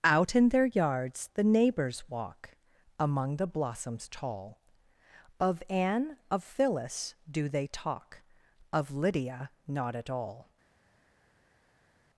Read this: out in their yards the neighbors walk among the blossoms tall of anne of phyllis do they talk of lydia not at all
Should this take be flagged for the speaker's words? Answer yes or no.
no